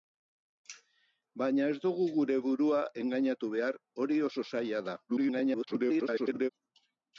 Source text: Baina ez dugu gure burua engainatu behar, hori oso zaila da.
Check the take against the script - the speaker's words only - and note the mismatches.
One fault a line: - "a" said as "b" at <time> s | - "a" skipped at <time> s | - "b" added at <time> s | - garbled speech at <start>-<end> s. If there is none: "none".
- garbled speech at 5.1-6.5 s